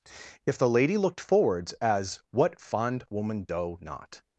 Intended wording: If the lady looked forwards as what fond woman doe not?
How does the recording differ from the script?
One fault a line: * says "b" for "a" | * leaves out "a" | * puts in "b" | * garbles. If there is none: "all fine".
all fine